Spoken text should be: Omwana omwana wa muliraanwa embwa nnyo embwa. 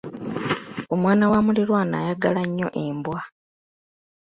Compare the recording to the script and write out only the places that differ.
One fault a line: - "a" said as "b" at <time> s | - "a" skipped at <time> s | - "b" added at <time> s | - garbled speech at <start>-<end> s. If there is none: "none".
- "omwana" skipped at 1.2 s
- "embwa" said as "ayagala" at 2.0 s